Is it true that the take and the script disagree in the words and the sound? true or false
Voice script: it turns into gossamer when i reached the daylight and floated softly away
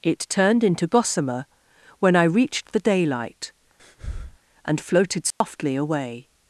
true